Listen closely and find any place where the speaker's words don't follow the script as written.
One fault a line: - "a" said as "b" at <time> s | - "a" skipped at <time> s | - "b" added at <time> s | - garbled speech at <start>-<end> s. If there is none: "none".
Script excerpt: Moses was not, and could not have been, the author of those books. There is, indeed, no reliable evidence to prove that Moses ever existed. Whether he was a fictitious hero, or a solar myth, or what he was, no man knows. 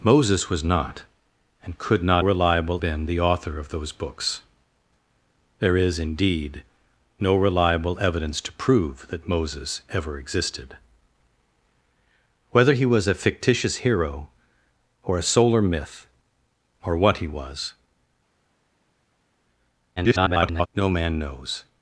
- "have" said as "reliable" at 2.2 s
- garbled speech at 20.0-20.7 s